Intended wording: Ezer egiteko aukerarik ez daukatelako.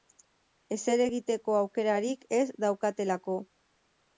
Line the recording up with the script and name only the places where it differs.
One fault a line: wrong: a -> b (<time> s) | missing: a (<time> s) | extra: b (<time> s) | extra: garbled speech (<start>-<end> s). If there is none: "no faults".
no faults